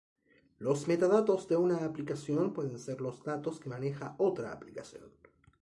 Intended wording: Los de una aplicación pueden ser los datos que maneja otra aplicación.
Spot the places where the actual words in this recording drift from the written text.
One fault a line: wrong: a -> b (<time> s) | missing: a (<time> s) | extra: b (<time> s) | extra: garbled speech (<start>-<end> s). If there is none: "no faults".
extra: metadatos (0.9 s)